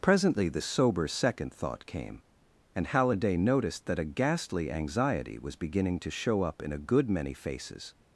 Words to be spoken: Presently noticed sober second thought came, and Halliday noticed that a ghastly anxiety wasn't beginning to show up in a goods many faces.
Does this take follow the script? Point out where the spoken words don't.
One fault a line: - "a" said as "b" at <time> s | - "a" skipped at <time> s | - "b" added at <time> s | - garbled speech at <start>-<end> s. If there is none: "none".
- "noticed" said as "the" at 0.5 s
- "wasn't" said as "was" at 5.4 s
- "goods" said as "good" at 6.8 s